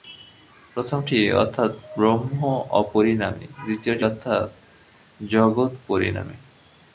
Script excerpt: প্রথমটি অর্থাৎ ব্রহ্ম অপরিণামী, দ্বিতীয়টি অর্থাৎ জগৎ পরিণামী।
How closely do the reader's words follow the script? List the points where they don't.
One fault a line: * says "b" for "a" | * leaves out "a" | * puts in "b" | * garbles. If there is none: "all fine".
all fine